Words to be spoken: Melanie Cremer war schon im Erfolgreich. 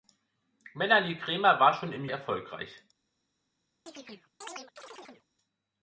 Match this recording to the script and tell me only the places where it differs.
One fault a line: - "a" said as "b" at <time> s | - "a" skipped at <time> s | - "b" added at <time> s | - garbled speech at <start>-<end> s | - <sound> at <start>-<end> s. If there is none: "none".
- chirp at 3.9-5.3 s